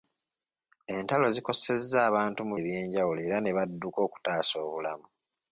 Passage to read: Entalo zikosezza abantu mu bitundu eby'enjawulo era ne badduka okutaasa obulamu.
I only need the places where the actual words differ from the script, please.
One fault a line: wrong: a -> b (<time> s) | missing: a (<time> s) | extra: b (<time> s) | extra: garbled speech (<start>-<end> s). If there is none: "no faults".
missing: bitundu (2.5 s)